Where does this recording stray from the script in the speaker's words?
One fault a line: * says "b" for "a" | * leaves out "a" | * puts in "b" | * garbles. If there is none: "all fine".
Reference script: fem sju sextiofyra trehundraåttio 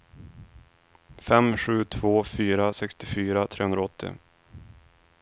* puts in "två fyra"